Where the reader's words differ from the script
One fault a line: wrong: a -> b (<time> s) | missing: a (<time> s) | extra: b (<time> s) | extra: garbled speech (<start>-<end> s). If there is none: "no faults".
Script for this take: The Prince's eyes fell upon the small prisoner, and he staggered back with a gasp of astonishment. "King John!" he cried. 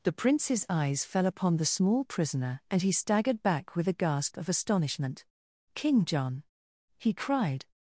no faults